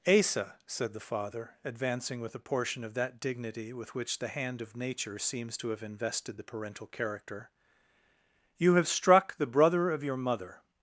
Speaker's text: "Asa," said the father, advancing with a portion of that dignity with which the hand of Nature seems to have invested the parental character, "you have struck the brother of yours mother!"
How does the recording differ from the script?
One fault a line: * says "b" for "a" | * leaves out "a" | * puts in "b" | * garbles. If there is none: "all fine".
* says "your" for "yours"